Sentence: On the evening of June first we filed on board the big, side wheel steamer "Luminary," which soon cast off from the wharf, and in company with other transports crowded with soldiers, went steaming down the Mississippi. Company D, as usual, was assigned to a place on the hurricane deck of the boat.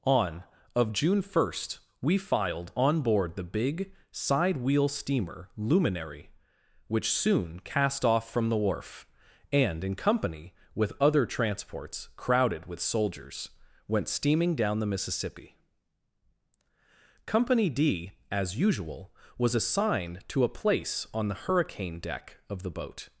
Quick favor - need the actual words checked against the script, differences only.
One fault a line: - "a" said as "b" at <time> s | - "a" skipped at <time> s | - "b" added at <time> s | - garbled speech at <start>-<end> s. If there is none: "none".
- "the evening" skipped at 0.4 s